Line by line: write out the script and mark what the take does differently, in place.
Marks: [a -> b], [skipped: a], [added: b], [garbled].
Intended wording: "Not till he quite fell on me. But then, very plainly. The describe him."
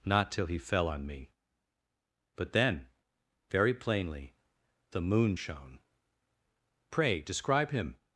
"Not till he [skipped: quite] fell on me. But then, very plainly. The [added: moon shone Pray] describe him."